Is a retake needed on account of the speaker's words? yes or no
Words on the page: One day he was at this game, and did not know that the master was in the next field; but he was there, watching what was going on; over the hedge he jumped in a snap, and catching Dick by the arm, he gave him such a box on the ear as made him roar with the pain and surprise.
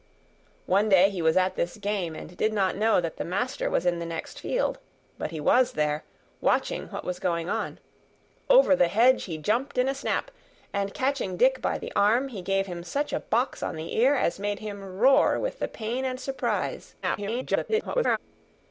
yes